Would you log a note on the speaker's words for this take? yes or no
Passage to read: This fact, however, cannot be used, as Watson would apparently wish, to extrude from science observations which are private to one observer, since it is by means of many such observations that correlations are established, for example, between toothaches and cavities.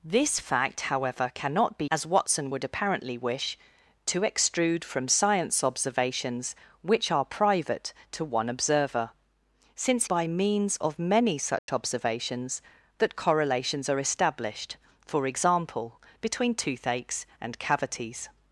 yes